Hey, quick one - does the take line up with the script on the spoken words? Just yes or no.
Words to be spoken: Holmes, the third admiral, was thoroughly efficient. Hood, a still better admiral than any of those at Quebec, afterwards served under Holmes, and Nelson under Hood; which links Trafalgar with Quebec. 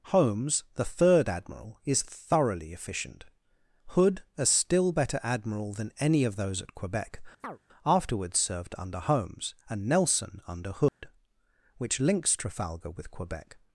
no